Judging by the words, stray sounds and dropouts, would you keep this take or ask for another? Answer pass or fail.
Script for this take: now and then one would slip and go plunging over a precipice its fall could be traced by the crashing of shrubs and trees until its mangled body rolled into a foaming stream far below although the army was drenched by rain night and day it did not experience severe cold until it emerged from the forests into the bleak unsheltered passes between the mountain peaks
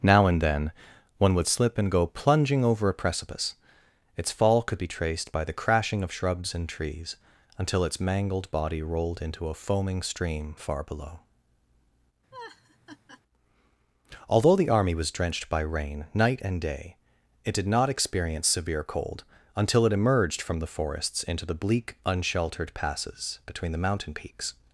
fail